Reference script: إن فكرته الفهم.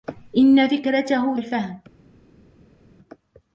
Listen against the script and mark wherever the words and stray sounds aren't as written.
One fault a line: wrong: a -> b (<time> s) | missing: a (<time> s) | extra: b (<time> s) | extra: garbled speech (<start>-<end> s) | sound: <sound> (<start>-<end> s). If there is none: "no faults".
no faults